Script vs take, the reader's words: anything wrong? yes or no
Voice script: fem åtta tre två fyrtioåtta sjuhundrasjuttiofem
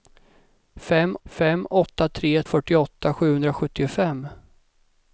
yes